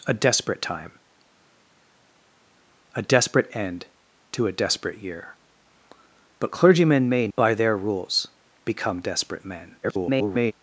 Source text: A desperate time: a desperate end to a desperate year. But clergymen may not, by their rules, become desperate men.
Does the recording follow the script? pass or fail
fail